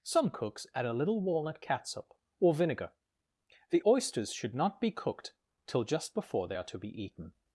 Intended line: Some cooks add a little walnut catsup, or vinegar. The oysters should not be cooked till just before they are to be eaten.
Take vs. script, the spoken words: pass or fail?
pass